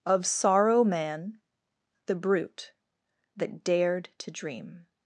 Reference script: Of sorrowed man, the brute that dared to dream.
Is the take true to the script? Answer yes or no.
no